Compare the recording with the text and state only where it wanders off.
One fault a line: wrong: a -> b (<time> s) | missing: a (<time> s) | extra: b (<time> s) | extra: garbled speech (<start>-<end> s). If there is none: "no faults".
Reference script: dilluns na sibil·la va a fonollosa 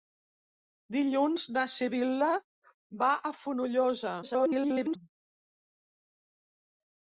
extra: garbled speech (4.2-5.0 s)